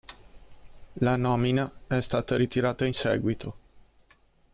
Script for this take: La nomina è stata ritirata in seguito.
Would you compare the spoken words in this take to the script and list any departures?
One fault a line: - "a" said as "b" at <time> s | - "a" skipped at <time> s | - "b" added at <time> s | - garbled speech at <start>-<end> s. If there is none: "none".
none